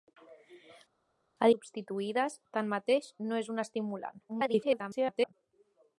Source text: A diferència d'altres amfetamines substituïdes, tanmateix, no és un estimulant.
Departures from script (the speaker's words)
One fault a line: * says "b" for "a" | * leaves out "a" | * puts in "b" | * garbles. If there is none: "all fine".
* leaves out "diferència d'altres amfetamines"
* garbles